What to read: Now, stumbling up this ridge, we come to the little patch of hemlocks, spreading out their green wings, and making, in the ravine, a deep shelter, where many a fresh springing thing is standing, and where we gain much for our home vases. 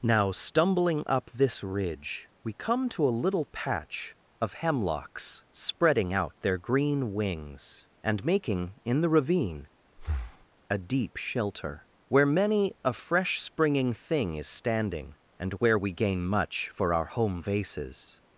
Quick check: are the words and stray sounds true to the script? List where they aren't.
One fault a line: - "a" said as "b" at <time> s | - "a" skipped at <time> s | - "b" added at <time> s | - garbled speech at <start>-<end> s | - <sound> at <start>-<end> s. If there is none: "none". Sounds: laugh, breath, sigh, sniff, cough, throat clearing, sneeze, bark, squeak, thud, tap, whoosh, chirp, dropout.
- "the" said as "a" at 3.1 s
- breath at 10.0-10.5 s